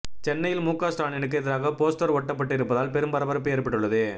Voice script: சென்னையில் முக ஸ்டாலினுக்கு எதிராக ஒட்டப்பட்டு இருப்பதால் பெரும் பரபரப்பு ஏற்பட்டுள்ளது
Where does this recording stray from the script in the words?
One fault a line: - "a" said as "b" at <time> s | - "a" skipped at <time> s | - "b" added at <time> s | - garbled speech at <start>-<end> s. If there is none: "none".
- "போஸ்டர்" added at 1.8 s